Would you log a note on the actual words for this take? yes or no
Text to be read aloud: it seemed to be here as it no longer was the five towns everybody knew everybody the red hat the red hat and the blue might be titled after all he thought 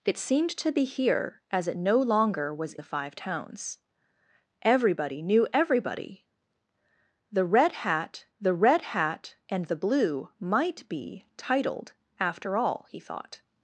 no